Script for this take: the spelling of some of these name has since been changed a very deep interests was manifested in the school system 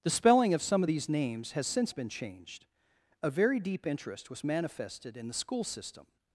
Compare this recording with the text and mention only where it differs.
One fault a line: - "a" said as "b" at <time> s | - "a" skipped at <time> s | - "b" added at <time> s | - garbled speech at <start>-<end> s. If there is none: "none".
- "name" said as "names" at 1.1 s
- "interests" said as "interest" at 3.9 s